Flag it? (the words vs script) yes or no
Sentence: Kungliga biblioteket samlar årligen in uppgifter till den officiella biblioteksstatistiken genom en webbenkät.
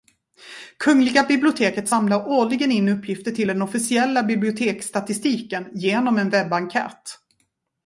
no